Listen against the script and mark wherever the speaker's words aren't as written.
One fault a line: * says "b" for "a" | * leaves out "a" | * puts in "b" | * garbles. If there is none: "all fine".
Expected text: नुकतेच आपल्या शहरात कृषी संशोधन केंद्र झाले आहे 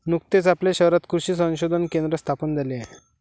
* puts in "स्थापन"